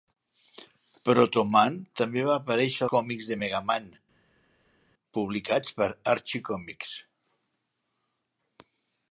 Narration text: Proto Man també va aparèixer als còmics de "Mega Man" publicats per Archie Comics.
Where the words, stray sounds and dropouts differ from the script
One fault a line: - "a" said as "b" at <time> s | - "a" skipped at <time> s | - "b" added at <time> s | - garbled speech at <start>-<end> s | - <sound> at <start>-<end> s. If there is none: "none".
- "als" skipped at 2.8 s